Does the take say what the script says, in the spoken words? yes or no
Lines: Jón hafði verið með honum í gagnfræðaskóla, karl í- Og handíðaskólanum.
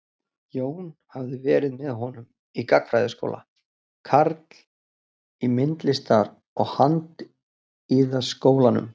no